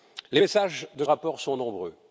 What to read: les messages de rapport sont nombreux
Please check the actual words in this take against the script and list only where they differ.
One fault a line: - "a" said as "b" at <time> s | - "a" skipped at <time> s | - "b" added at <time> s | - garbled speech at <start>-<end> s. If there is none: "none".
none